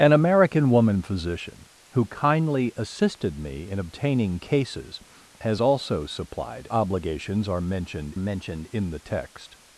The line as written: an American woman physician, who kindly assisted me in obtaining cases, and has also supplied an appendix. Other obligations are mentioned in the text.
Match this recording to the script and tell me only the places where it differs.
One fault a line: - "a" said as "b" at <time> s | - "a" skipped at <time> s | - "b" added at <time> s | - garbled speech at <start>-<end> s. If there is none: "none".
- "and" skipped at 5.0 s
- "an appendix Other" skipped at 6.7 s
- "mentioned" added at 8.2 s